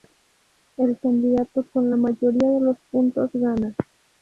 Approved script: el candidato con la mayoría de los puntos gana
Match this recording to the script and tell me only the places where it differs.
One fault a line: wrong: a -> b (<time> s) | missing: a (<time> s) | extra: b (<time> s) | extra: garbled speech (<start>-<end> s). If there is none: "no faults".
no faults